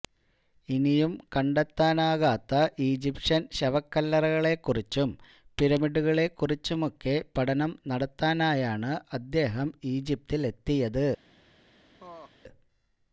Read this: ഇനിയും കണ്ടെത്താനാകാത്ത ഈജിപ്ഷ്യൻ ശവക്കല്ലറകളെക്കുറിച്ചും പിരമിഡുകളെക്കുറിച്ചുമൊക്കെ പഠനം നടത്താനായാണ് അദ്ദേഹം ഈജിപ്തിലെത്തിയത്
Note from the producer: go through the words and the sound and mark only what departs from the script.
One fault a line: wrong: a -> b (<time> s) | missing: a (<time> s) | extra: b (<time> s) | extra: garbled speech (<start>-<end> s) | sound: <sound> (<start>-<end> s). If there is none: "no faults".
sound: laugh (12.0-12.3 s)